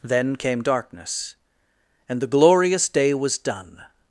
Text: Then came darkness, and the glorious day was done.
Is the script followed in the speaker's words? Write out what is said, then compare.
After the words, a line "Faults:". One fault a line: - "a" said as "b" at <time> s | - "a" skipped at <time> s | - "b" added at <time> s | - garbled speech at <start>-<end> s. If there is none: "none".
Then came darkness, and the glorious day was done.
Faults:
none